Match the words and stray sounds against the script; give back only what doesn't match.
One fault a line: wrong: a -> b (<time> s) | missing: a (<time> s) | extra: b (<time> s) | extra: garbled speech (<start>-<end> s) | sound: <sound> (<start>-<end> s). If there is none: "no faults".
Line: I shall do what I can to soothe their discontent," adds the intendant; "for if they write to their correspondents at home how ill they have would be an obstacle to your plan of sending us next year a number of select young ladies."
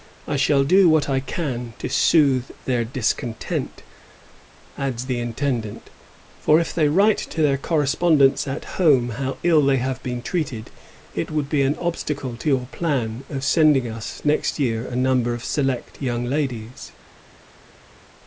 extra: been treated it (10.0 s)